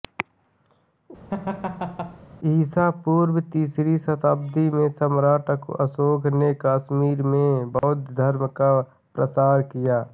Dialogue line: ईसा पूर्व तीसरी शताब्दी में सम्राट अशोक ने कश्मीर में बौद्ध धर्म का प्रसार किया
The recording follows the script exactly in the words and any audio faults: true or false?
false